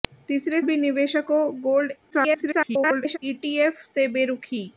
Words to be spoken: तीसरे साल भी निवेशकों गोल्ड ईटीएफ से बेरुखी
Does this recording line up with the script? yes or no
no